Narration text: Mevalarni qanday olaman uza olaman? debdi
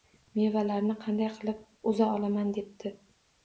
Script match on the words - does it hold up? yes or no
no